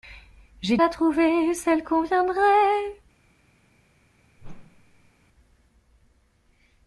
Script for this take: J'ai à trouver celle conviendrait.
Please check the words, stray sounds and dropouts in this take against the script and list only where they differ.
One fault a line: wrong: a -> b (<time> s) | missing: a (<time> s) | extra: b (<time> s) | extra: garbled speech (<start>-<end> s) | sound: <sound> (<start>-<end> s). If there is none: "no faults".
sound: whoosh (4.4-5.1 s)